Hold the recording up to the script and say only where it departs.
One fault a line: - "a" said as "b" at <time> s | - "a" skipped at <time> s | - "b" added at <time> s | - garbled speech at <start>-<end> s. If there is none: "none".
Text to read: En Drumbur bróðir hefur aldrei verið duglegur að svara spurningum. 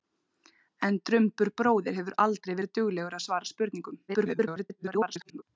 - garbled speech at 4.1-5.4 s